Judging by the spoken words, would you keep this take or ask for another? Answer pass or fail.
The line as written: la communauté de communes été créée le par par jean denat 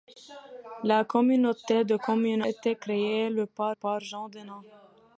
pass